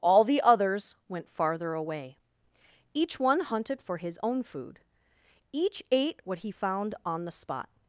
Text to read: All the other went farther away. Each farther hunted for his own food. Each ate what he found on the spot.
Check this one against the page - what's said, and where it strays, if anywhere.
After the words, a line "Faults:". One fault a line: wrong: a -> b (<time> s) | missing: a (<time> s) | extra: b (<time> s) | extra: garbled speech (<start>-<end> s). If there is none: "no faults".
All the others went farther away. Each one hunted for his own food. Each ate what he found on the spot.
Faults:
wrong: other -> others (0.4 s)
wrong: farther -> one (3.2 s)